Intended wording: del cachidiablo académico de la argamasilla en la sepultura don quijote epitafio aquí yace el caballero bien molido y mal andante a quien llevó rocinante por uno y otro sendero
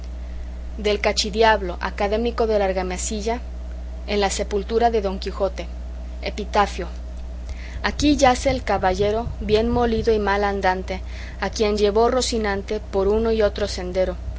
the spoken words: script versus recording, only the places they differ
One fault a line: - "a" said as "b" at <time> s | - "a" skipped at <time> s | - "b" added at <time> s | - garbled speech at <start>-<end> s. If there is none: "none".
- "de" added at 4.9 s